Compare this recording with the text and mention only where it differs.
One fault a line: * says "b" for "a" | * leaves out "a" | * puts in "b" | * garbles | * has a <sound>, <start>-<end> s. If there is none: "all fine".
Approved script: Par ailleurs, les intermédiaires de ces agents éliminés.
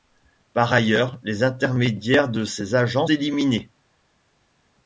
all fine